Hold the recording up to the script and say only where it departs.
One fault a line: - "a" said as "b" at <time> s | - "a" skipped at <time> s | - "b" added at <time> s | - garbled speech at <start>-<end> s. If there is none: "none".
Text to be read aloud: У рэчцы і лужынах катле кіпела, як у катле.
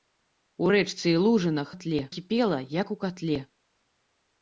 none